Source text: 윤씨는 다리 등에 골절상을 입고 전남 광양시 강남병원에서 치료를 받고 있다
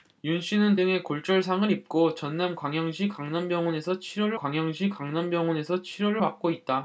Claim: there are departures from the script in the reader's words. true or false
true